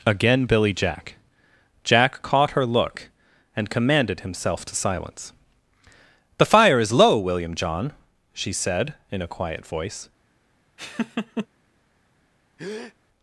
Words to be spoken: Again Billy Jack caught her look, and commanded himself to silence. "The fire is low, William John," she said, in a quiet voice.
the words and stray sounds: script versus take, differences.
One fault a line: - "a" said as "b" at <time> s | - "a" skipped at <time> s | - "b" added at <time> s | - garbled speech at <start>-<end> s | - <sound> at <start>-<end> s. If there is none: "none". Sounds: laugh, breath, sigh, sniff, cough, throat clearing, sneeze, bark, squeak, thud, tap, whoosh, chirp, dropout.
- "Jack" added at 1.8 s
- laugh at 10.8-11.5 s
- breath at 12.6-12.9 s